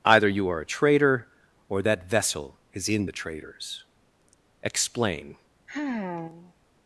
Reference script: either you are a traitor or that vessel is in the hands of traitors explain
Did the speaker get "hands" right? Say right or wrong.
wrong